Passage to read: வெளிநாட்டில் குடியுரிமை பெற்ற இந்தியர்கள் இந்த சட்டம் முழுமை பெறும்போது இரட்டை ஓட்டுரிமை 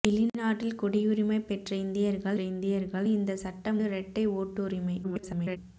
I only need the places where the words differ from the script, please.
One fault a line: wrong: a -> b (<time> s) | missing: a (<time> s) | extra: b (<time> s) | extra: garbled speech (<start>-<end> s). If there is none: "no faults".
extra: இந்தியர்கள் (2.4 s)
missing: முழுமை பெறும்போது (3.8 s)
extra: garbled speech (5.0-5.6 s)